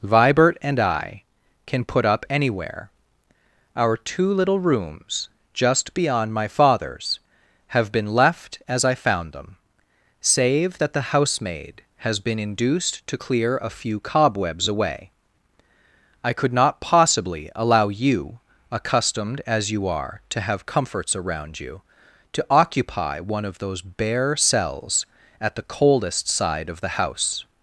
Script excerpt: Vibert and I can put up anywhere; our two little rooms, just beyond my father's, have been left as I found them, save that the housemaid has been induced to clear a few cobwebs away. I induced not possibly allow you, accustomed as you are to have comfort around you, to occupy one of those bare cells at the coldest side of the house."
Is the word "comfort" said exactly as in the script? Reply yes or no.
no